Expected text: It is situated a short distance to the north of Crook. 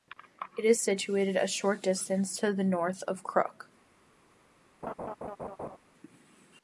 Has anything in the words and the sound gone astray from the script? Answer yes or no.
yes